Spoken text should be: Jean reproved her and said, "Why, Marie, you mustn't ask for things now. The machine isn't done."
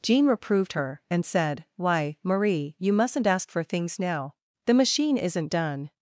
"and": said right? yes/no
yes